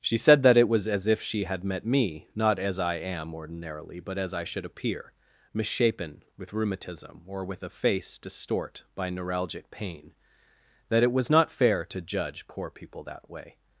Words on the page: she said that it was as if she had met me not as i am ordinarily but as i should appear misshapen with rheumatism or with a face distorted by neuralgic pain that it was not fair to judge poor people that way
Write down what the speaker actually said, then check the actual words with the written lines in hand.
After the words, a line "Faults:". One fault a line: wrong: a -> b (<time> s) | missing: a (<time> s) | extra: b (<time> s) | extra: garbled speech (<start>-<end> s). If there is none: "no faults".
she said that it was as if she had met me not as i am ordinarily but as i should appear misshapen with rheumatism or with a face distort by neuralgic pain that it was not fair to judge poor people that way
Faults:
wrong: distorted -> distort (8.2 s)